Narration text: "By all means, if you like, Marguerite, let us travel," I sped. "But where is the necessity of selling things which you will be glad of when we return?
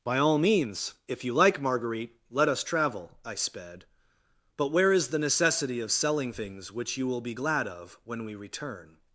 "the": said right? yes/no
yes